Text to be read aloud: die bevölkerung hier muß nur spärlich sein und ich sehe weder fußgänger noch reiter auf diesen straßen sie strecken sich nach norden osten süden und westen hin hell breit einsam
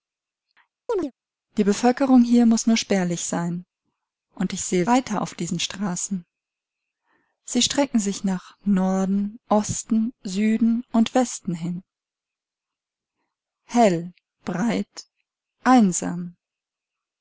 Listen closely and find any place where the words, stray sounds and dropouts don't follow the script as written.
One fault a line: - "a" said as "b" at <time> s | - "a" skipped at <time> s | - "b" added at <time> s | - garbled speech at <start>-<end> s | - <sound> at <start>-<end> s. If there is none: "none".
- chirp at 0.9-1.1 s
- "weder fußgänger noch" skipped at 4.9 s